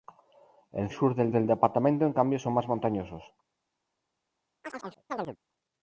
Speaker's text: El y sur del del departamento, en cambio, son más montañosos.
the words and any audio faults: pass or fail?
fail